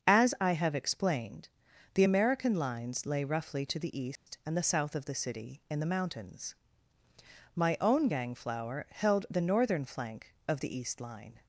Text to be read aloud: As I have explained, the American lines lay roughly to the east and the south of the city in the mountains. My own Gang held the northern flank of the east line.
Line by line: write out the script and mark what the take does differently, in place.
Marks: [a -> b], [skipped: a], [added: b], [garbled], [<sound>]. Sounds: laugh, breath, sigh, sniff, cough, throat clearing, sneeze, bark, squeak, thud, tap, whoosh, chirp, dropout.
As I have explained, the American lines lay roughly to the east [dropout] and the south of the city in the mountains. My own Gang [added: flower] held the northern flank of the east line.